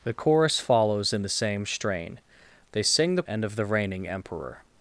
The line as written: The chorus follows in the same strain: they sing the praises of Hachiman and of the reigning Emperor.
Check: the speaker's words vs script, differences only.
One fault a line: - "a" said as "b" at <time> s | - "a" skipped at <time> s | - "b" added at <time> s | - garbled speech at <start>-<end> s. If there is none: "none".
- "praises of Hachiman" skipped at 3.2 s